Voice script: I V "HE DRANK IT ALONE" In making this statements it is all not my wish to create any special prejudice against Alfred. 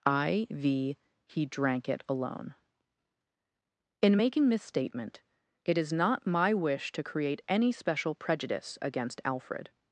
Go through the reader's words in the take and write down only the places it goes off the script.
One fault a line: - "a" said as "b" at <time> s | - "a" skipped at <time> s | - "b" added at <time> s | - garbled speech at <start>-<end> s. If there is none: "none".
- "statements" said as "statement" at 4.6 s
- "all" skipped at 5.9 s